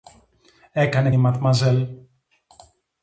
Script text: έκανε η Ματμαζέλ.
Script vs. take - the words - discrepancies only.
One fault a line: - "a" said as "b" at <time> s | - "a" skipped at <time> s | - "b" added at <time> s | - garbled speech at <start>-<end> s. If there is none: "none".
none